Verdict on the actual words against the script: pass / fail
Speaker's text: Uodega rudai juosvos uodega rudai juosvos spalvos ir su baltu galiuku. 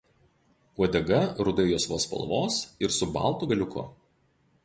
fail